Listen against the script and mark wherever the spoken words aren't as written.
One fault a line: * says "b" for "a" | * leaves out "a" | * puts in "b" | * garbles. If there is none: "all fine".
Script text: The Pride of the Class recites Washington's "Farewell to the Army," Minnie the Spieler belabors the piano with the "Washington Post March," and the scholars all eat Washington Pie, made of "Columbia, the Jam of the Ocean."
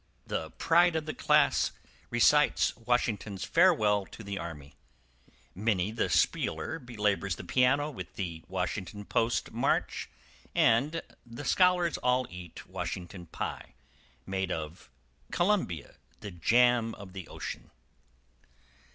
all fine